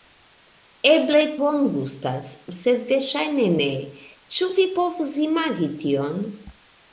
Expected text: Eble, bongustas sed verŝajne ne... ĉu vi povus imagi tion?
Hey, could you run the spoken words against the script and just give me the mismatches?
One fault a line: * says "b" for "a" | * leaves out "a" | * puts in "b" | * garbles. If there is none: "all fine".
all fine